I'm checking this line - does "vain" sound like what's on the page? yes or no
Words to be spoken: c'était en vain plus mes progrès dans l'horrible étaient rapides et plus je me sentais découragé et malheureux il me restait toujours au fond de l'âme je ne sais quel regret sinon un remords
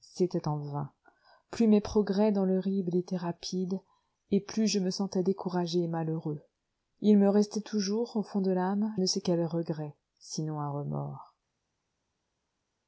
yes